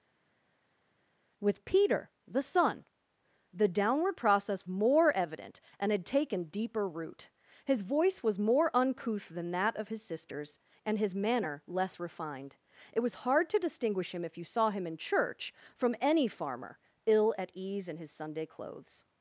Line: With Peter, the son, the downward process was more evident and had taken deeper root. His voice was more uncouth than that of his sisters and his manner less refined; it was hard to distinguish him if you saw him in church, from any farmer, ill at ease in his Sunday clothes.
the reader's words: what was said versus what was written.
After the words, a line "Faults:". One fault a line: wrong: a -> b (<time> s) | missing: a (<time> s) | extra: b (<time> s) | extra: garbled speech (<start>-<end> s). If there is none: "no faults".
With Peter, the son, the downward process more evident and had taken deeper root. His voice was more uncouth than that of his sisters and his manner less refined; it was hard to distinguish him if you saw him in church, from any farmer, ill at ease in his Sunday clothes.
Faults:
missing: was (4.7 s)